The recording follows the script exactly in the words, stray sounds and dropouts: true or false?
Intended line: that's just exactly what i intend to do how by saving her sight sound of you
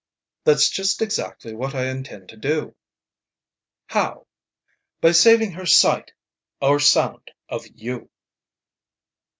false